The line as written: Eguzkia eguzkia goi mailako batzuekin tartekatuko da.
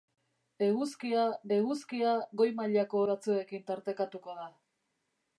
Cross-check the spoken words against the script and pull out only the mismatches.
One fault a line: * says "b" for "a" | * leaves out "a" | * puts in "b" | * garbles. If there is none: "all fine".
all fine